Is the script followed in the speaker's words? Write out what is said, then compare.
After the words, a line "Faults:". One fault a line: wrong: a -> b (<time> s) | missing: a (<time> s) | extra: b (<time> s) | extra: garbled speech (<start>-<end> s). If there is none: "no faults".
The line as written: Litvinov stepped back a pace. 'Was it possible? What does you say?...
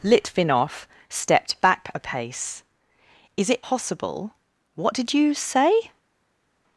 Litvinov stepped back a pace. 'Is it possible? What did you say?...
Faults:
wrong: Was -> Is (3.4 s)
wrong: does -> did (4.9 s)